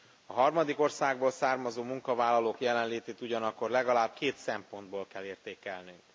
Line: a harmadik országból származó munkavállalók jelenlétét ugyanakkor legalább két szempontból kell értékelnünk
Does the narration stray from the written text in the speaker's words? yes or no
no